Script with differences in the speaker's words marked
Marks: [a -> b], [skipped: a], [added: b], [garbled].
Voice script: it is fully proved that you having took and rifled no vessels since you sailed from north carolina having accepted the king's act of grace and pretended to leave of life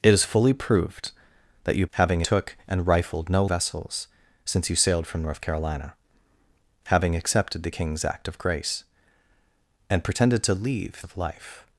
it is fully proved that you having took and rifled no vessels since you sailed from north carolina having accepted the king's act of grace and pretended to leave of life